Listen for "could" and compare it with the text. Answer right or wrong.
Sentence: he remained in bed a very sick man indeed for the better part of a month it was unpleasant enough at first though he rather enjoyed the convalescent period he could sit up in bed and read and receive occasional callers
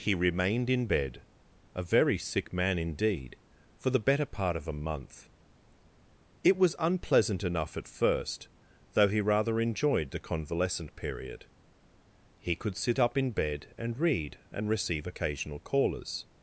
right